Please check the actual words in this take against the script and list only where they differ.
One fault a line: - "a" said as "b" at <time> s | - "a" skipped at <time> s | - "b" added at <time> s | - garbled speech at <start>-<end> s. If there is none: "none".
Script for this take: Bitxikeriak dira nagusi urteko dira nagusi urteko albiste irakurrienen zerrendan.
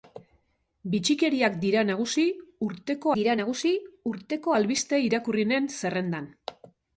none